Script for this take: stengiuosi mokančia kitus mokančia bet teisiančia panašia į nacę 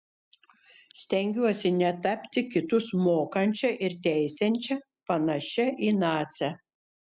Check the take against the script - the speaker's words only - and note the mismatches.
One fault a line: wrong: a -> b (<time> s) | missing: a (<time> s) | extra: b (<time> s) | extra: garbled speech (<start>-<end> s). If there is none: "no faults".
wrong: mokančia -> netapti (1.8 s)
wrong: bet -> ir (3.9 s)